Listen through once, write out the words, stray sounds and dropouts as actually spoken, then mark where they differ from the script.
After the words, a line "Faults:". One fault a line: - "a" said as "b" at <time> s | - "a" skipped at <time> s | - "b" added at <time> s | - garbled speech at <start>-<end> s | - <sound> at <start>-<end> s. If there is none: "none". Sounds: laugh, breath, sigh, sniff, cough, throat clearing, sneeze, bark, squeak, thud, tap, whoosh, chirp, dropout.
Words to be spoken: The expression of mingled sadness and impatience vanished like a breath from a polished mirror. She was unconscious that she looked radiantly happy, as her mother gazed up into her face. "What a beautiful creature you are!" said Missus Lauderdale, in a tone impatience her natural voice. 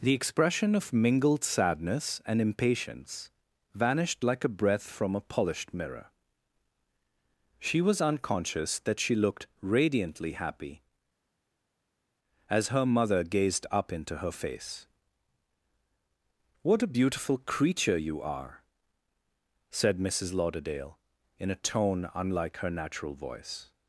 The expression of mingled sadness and impatience vanished like a breath from a polished mirror. She was unconscious that she looked radiantly happy, as her mother gazed up into her face. "What a beautiful creature you are!" said Missus Lauderdale, in a tone unlike her natural voice.
Faults:
- "impatience" said as "unlike" at 22.1 s